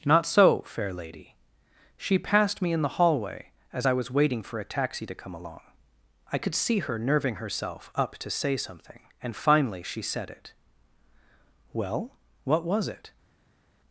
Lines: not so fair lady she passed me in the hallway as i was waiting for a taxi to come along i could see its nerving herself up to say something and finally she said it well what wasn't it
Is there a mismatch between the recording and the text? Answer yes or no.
yes